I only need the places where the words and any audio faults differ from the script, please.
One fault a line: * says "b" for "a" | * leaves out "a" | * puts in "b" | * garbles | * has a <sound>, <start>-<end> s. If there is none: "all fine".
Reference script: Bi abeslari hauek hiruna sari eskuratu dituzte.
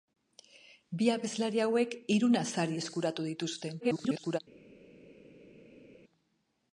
* garbles